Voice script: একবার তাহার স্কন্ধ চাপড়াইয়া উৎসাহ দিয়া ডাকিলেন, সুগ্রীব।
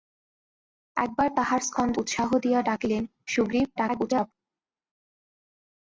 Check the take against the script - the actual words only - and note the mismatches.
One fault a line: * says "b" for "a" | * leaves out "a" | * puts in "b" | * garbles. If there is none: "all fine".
* leaves out "চাপড়াইয়া"
* garbles